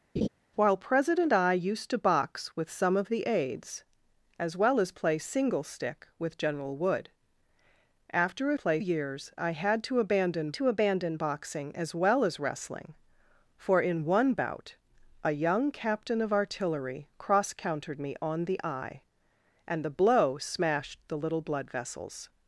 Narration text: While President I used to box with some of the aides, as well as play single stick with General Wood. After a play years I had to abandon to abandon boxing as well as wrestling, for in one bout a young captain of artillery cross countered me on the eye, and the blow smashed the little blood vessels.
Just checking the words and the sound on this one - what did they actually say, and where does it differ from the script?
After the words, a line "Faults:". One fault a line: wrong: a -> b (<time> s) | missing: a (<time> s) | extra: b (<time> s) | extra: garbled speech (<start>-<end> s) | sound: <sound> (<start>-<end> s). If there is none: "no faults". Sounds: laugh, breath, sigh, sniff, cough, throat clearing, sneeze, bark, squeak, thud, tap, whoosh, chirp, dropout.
While President I used to box with some of the aides, as well as play single stick with General Wood. After a play years I had to abandon to abandon boxing as well as wrestling, for in one bout a young captain of artillery cross countered me on the eye, and the blow smashed the little blood vessels.
Faults:
sound: laugh (0.2-0.3 s)